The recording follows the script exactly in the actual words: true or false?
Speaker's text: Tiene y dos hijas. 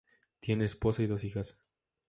false